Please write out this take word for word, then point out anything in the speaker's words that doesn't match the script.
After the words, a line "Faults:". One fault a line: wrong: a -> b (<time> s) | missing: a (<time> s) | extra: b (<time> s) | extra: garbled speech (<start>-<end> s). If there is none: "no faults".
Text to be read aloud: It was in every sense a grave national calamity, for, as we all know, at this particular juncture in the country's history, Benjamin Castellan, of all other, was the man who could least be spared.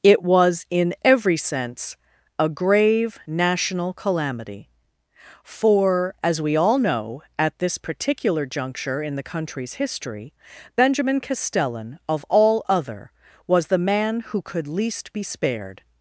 It was in every sense a grave national calamity, for, as we all know, at this particular juncture in the country's history, Benjamin Castellan, of all other, was the man who could least be spared.
Faults:
no faults